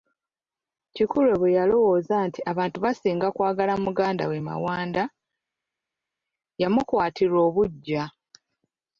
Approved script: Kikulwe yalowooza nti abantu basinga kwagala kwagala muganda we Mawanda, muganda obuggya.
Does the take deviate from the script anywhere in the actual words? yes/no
yes